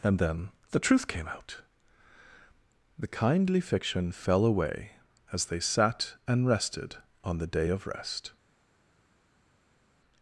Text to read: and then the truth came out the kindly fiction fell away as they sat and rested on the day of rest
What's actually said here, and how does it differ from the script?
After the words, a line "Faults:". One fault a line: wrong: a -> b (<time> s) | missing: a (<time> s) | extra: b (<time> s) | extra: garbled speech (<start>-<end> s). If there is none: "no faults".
and then the truth came out the kindly fiction fell away as they sat and rested on the day of rest
Faults:
no faults